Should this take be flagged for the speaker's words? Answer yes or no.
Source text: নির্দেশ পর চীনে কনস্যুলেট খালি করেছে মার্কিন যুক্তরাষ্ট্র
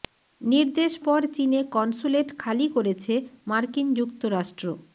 no